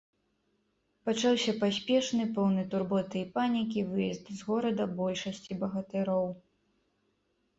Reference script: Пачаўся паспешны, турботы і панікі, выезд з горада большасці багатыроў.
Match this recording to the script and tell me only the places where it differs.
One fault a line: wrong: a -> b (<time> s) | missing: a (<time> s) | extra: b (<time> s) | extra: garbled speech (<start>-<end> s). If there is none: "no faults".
extra: поўны (2.4 s)